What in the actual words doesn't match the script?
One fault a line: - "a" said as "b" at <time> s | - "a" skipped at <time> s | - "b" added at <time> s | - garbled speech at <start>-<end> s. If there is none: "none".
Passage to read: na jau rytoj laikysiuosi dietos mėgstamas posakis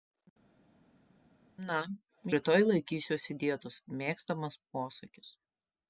- "jau" skipped at 1.8 s